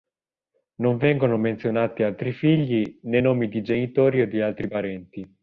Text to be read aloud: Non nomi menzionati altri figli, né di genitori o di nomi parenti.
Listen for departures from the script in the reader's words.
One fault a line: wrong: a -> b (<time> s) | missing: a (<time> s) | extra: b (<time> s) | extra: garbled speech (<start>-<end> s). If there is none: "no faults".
wrong: nomi -> vengono (1.0 s)
extra: nomi (3.2 s)
wrong: nomi -> altri (4.4 s)